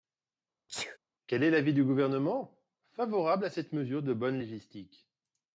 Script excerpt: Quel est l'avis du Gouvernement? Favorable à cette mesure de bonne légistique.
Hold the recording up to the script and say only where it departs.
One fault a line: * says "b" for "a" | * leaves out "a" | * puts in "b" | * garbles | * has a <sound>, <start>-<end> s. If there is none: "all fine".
* has a sneeze, 0.7-1.0 s